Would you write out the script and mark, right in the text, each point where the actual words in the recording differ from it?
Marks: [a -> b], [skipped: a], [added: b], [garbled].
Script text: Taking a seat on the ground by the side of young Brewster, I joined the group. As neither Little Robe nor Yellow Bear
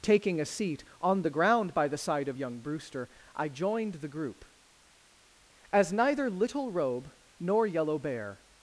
Taking a seat on the ground by the side of young Brewster, I joined the group. As neither Little Robe nor Yellow Bear